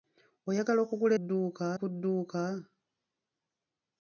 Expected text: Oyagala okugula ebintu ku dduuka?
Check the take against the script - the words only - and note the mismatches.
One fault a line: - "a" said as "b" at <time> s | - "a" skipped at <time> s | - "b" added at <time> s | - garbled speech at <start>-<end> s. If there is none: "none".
- "ebintu" said as "dduuka" at 1.2 s